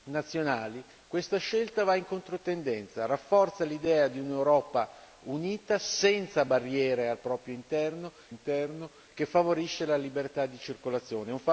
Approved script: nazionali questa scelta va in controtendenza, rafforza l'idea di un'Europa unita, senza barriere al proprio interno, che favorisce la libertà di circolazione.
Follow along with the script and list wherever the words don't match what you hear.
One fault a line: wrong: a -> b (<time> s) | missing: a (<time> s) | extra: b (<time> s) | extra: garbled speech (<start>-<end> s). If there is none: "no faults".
extra: interno (8.3 s)